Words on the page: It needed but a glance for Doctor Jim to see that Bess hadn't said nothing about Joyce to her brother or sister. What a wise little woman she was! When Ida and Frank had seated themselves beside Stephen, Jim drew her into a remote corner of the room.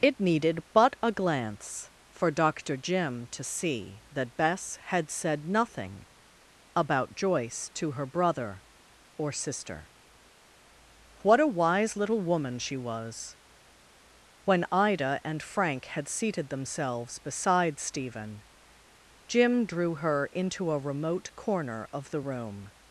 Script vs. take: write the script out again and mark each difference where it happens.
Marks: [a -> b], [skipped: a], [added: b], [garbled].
It needed but a glance for Doctor Jim to see that Bess [hadn't -> had] said nothing about Joyce to her brother or sister. What a wise little woman she was! When Ida and Frank had seated themselves beside Stephen, Jim drew her into a remote corner of the room.